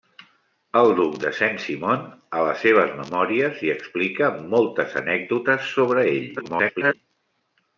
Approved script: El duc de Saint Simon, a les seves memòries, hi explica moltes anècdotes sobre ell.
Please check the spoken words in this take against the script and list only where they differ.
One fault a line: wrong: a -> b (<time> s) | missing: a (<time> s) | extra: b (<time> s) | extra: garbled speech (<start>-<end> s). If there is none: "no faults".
extra: garbled speech (6.4-6.9 s)